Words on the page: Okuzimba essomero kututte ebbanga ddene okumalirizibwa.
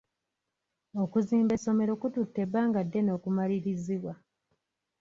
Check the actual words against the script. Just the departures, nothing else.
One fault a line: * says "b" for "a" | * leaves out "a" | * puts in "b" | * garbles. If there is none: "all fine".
all fine